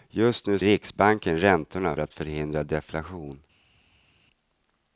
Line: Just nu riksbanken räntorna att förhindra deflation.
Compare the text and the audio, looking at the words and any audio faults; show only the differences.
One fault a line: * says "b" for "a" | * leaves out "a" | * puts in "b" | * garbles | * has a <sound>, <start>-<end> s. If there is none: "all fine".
all fine